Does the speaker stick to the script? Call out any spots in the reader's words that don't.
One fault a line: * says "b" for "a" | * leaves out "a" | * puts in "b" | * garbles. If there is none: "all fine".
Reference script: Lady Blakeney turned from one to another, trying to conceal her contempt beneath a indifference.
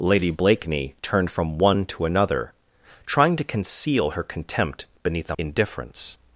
all fine